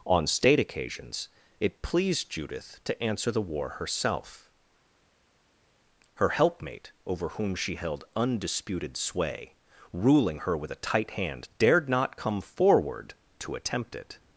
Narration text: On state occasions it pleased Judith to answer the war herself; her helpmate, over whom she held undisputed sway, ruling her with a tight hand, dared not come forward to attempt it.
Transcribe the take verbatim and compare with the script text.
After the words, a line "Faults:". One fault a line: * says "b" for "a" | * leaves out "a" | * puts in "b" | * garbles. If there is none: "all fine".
On state occasions it pleased Judith to answer the war herself; her helpmate, over whom she held undisputed sway, ruling her with a tight hand, dared not come forward to attempt it.
Faults:
all fine